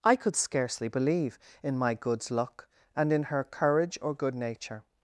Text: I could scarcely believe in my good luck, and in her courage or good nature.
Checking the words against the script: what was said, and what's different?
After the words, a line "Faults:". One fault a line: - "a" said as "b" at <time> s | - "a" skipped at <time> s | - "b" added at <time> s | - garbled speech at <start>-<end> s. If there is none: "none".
I could scarcely believe in my goods luck, and in her courage or good nature.
Faults:
- "good" said as "goods" at 1.9 s